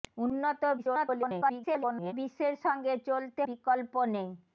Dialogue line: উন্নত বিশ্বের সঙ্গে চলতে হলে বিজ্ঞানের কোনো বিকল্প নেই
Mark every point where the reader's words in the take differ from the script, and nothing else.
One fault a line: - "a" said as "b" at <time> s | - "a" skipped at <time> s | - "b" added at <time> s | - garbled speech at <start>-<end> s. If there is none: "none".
- garbled speech at 0.8-2.1 s
- "হলে বিজ্ঞানের কোনো" skipped at 3.4 s